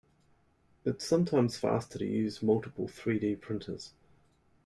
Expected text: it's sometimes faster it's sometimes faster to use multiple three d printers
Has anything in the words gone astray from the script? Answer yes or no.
yes